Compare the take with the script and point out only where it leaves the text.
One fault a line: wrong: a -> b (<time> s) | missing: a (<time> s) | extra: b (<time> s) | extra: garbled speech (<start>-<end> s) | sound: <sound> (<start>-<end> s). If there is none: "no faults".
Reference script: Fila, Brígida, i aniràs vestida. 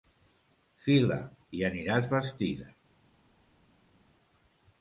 missing: Brígida (1.2 s)